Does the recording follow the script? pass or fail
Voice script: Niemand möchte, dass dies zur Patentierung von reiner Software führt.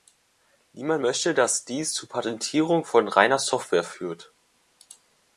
pass